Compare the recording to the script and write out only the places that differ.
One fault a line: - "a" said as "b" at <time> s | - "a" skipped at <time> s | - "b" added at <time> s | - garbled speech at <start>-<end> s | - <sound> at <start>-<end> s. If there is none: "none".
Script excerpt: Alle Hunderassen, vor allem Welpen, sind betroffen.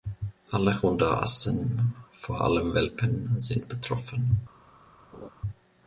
- laugh at 5.1-5.3 s